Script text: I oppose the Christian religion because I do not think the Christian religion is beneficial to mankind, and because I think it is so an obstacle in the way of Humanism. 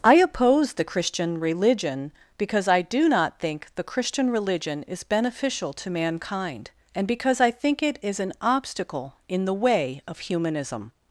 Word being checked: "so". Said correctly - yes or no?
no